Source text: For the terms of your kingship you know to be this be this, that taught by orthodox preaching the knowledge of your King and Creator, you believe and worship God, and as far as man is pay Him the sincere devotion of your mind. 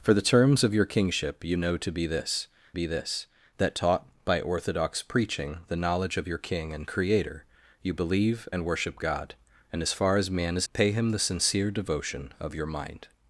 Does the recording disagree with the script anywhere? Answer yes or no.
no